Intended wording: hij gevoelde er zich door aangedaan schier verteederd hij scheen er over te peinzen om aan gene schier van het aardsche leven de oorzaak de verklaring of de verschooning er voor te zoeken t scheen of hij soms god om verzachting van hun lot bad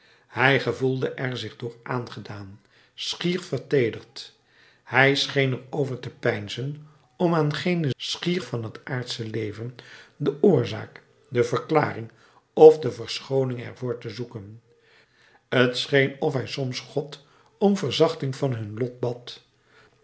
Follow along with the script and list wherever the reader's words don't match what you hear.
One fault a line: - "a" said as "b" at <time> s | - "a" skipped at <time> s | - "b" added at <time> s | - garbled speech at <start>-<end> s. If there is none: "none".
none